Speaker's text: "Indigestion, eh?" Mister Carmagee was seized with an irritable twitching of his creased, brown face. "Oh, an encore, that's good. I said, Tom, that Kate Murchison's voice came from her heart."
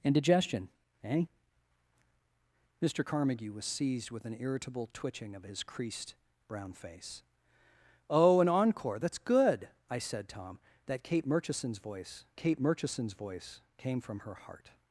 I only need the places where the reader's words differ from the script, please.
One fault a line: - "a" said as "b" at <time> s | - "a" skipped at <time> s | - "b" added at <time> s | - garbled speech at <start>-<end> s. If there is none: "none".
- "Kate Murchison's voice" added at 12.4 s